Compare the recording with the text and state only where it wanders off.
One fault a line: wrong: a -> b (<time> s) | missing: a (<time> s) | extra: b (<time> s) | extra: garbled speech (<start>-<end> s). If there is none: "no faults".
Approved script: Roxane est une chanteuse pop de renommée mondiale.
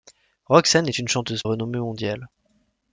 missing: pop de (1.4 s)